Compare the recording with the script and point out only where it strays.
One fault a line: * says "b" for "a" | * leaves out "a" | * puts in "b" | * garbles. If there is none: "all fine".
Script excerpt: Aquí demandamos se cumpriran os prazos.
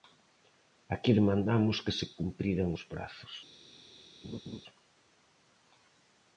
* puts in "que"